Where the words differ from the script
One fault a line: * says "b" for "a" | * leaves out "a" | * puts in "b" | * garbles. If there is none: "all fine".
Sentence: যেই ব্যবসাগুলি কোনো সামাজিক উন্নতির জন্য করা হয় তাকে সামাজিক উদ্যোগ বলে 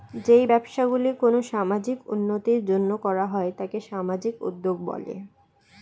all fine